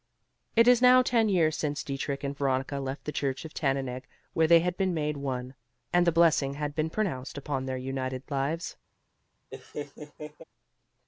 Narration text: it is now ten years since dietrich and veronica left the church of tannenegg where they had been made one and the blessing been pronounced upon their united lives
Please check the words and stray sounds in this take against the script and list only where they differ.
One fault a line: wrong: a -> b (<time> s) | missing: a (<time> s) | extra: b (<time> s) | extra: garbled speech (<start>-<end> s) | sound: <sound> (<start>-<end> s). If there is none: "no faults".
extra: had (6.5 s)
sound: laugh (9.5-10.4 s)